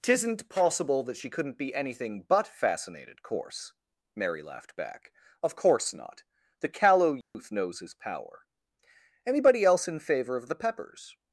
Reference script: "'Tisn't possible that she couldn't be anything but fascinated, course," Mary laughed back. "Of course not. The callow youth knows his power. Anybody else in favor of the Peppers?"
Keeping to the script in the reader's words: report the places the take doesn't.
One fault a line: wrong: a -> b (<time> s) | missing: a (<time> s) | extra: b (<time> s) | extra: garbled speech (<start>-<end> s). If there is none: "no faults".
no faults